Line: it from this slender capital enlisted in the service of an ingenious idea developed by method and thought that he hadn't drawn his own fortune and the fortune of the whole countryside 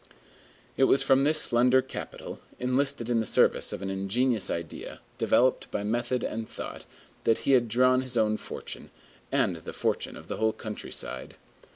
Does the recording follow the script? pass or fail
fail